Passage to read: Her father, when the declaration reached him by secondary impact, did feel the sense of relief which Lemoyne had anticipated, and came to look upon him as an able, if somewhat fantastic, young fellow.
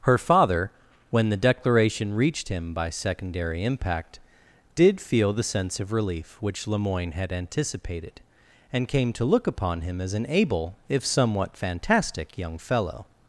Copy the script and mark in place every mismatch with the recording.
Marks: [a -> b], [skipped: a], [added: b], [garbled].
Her father, when the declaration reached him by secondary impact, did feel the sense of relief which Lemoyne had anticipated, and came to look upon him as an able, if somewhat fantastic, young fellow.